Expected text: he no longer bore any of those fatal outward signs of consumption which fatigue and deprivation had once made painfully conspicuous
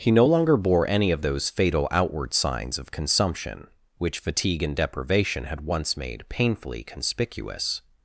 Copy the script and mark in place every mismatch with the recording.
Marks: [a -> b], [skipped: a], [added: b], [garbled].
he no longer bore any of those fatal outward signs of consumption which fatigue and deprivation had once made painfully conspicuous